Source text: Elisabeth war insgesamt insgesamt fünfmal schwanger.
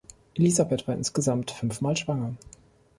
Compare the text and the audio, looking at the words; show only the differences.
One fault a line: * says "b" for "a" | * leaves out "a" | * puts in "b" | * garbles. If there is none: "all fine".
* leaves out "insgesamt"